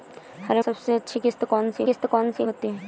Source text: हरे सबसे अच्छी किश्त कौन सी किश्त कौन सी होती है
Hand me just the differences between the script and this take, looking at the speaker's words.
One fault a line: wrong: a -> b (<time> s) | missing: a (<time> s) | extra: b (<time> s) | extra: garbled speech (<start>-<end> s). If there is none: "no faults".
no faults